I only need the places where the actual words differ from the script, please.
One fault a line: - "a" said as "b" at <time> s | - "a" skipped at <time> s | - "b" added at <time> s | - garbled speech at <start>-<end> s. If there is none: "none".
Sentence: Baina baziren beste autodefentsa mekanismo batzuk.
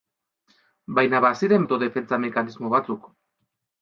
- "beste" skipped at 1.7 s